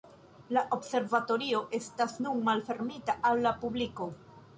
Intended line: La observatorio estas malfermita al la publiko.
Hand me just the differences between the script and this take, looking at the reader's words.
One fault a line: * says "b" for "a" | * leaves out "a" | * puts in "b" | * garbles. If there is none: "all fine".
* puts in "nun"